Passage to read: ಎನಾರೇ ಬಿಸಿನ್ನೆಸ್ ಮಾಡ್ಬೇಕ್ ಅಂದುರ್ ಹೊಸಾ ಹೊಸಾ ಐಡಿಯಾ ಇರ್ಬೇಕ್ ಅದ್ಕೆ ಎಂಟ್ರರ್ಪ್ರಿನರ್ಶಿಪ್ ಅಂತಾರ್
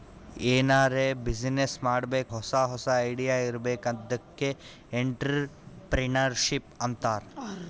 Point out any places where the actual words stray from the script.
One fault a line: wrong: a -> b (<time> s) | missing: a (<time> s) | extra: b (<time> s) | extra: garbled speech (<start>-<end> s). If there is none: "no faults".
missing: ಅಂದುರ್ (2.3 s)